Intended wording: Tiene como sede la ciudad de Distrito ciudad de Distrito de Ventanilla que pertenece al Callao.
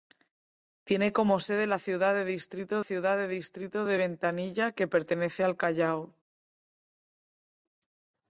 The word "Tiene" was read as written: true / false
true